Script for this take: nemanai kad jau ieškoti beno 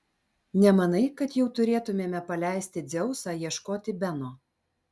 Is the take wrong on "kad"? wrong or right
right